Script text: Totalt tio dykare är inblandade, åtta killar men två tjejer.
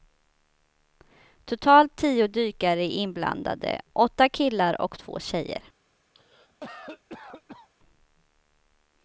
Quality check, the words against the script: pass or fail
fail